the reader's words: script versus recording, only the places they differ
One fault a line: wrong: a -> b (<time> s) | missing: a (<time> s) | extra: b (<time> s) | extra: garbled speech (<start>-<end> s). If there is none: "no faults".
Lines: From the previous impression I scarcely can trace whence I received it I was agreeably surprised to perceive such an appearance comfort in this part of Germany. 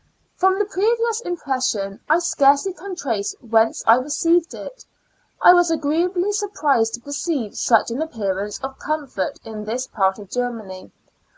extra: of (8.6 s)